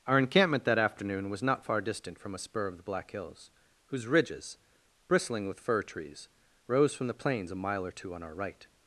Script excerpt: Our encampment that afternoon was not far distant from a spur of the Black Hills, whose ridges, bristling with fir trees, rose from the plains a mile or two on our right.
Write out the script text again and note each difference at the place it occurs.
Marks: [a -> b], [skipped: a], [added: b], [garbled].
Our encampment that afternoon was not far distant from a spur of the Black Hills, whose ridges, bristling with fir trees, rose from the plains a mile or two on our right.